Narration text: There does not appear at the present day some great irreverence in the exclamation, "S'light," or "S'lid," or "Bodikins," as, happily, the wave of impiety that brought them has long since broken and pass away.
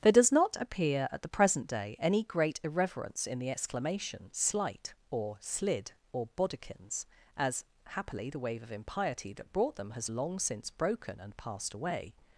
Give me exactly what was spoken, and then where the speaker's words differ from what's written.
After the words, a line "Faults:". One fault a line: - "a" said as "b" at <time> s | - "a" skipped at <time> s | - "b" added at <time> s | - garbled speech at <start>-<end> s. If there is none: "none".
There does not appear at the present day any great irreverence in the exclamation, "S'light," or "S'lid," or "Bodikins," as, happily, the wave of impiety that brought them has long since broken and passed away.
Faults:
- "some" said as "any" at 2.0 s
- "pass" said as "passed" at 11.4 s